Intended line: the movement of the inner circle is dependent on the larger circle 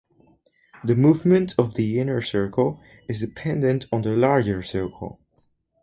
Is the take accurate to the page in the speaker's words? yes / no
yes